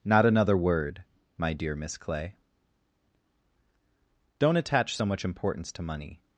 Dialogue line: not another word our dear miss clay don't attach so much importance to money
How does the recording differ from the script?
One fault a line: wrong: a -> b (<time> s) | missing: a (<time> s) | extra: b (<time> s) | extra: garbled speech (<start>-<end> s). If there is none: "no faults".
wrong: our -> my (1.4 s)